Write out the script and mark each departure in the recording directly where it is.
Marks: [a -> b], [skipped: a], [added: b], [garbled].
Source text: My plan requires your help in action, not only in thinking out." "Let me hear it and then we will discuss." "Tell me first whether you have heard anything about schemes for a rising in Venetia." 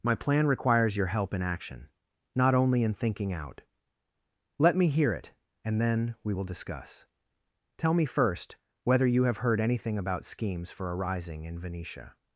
My plan requires your help in action, not only in thinking out." "Let me hear it and then we will discuss." "Tell me first whether you have heard anything about schemes for a rising in Venetia."